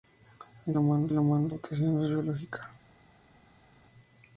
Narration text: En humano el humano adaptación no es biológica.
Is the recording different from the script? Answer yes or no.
no